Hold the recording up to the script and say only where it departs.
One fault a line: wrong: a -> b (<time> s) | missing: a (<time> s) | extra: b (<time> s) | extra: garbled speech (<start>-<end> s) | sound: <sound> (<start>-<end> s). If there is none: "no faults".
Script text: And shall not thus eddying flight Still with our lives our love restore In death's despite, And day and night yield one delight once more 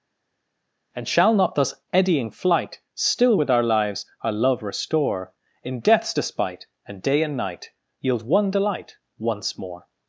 no faults